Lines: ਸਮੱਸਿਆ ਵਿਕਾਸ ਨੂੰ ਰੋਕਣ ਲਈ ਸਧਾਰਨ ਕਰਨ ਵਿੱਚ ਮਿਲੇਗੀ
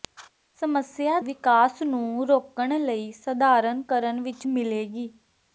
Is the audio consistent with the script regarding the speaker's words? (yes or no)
yes